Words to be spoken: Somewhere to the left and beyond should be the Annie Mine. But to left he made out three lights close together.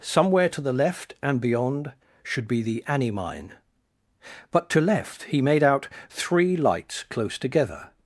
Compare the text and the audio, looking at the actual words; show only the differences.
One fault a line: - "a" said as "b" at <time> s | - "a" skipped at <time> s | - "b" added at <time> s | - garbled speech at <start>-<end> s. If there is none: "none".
none